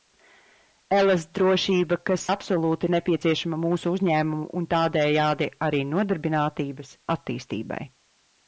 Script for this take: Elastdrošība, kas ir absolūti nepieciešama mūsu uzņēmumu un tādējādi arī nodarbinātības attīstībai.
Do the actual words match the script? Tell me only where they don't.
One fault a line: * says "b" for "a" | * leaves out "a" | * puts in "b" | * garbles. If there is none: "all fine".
* leaves out "ir"